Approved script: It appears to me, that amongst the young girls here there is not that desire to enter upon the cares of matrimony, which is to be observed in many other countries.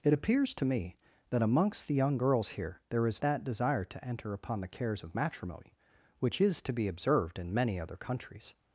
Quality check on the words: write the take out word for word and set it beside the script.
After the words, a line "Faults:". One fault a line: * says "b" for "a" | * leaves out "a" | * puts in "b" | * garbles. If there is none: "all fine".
It appears to me, that amongst the young girls here there is that desire to enter upon the cares of matrimony, which is to be observed in many other countries.
Faults:
* leaves out "not"